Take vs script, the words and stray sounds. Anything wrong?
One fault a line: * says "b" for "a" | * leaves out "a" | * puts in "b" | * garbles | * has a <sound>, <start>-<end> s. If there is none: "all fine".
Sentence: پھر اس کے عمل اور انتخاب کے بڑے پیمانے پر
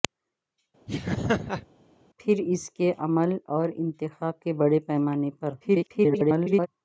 * has a laugh, 0.9-1.7 s
* garbles